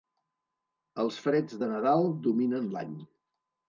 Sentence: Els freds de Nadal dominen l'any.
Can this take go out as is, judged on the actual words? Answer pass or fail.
pass